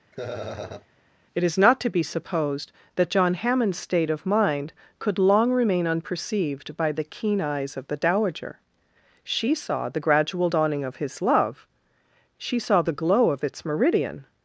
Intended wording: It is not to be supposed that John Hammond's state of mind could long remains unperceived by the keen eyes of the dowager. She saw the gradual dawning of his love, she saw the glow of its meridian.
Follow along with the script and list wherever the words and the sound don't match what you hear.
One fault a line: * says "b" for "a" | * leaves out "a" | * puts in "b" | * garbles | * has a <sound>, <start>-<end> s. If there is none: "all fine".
* has a laugh, 0.1-0.9 s
* says "remain" for "remains"